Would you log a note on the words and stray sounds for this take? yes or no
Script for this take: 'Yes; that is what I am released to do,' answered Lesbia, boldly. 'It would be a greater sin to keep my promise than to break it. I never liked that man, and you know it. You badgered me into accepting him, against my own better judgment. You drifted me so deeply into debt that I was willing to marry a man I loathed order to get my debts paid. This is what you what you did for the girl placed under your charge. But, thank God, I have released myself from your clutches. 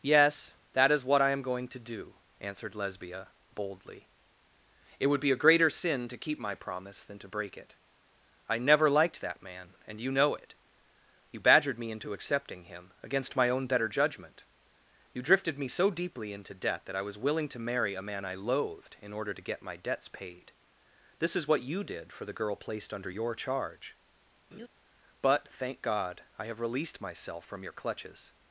yes